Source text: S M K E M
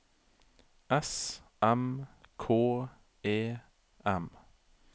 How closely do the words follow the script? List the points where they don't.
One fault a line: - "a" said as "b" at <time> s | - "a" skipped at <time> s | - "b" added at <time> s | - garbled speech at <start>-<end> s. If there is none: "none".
none